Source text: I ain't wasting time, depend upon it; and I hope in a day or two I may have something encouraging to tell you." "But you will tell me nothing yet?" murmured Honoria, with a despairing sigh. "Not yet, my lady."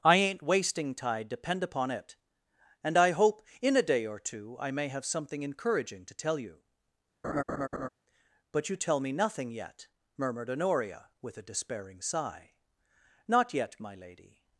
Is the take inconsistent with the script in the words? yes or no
yes